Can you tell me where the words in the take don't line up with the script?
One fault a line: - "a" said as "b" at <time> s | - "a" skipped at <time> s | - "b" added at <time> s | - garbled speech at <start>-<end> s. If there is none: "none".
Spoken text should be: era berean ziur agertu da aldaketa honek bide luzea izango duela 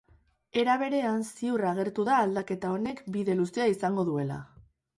none